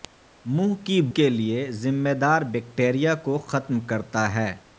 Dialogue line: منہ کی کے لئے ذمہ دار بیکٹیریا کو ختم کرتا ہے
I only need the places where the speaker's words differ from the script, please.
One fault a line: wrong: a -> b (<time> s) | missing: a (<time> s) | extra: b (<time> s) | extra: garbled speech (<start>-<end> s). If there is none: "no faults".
no faults